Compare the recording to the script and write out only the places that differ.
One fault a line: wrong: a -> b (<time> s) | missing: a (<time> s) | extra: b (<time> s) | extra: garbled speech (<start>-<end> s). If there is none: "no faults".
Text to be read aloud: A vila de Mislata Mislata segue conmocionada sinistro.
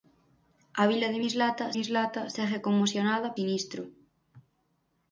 no faults